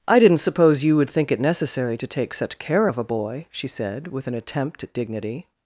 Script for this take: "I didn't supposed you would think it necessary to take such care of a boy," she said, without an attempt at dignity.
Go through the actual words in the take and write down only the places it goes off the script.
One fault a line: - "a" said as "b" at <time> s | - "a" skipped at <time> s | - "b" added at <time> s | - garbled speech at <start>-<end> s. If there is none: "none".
- "supposed" said as "suppose" at 0.4 s
- "without" said as "with" at 4.1 s